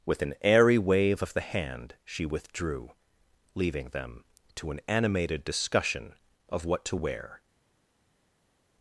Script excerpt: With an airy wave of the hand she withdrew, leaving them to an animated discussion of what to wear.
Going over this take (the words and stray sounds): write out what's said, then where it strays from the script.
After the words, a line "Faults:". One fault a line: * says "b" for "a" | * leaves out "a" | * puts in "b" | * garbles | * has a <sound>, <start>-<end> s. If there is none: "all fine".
With an airy wave of the hand she withdrew, leaving them to an animated discussion of what to wear.
Faults:
all fine